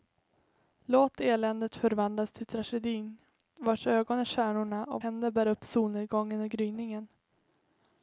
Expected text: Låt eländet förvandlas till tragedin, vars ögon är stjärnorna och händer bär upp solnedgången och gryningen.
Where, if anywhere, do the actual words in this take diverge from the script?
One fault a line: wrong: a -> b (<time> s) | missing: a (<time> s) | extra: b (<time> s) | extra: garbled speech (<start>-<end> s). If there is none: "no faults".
no faults